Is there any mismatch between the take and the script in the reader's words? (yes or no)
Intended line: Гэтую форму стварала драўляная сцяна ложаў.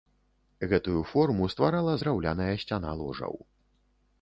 no